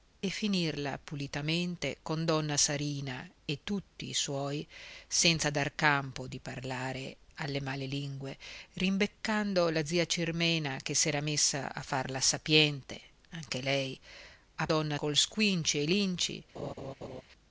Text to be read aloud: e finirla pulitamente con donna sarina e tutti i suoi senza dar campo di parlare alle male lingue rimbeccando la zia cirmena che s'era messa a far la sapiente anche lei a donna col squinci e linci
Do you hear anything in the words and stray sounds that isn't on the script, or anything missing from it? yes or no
yes